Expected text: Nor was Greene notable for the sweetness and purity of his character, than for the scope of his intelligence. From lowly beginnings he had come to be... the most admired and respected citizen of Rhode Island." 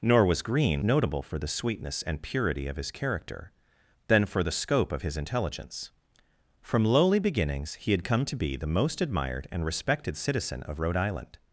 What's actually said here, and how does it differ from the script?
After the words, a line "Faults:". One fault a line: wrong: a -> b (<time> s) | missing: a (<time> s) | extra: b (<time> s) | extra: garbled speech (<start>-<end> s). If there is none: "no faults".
Nor was Greene notable for the sweetness and purity of his character, than for the scope of his intelligence. From lowly beginnings he had come to be... the most admired and respected citizen of Rhode Island."
Faults:
no faults